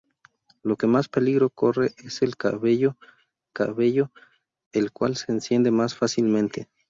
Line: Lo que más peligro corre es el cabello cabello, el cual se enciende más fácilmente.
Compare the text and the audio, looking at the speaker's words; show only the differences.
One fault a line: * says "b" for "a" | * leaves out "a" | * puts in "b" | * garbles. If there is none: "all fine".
all fine